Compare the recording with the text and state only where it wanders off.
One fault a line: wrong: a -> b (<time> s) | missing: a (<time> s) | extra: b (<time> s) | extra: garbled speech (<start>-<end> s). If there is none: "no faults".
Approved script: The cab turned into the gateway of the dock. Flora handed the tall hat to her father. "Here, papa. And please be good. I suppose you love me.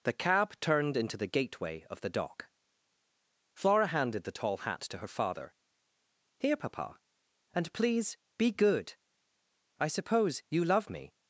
no faults